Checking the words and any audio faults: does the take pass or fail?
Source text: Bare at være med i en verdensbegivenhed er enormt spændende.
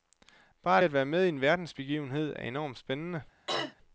fail